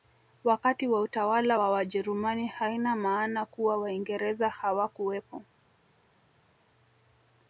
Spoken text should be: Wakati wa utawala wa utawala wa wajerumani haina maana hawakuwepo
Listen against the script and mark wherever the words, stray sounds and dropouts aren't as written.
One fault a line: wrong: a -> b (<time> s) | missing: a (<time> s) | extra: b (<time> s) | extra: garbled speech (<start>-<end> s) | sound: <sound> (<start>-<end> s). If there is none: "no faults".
missing: utawala wa (1.7 s)
extra: kuwa waingereza (3.5 s)